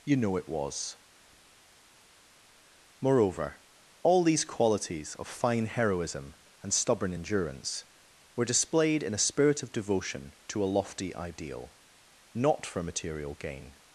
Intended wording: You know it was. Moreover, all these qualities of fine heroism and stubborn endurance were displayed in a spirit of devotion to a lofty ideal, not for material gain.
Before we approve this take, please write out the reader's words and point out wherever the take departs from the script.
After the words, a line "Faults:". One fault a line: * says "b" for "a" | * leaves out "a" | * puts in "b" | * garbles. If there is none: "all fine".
You know it was. Moreover, all these qualities of fine heroism and stubborn endurance were displayed in a spirit of devotion to a lofty ideal, not for material gain.
Faults:
all fine